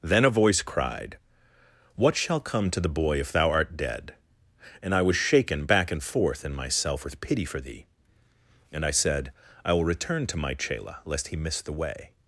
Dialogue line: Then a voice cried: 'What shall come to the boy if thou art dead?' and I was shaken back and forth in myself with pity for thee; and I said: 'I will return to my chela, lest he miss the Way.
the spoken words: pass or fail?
pass